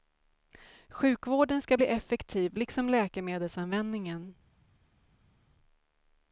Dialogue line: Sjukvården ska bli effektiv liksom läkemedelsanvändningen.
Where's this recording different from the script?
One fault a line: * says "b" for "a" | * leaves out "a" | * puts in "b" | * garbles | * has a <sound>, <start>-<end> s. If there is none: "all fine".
all fine